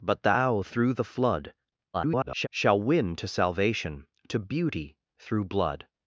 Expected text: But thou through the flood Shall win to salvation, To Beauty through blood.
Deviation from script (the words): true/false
true